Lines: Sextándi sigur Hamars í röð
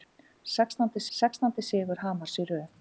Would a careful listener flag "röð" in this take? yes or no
no